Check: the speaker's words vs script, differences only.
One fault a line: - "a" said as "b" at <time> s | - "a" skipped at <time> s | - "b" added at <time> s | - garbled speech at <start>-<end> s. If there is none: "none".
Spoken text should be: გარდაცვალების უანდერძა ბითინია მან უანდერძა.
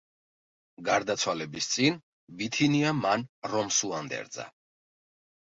- "უანდერძა" said as "წინ" at 1.7 s
- "რომს" added at 3.5 s